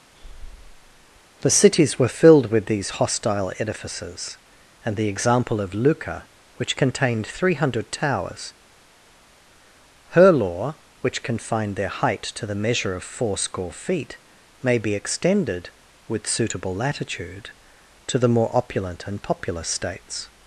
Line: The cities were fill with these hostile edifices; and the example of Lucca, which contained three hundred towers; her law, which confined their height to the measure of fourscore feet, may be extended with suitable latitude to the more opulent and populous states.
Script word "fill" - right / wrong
wrong